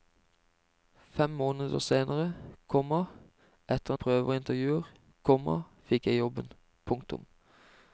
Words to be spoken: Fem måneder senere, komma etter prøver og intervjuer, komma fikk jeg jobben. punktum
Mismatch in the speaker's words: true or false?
false